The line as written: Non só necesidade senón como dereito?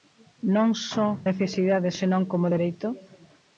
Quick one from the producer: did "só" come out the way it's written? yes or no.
yes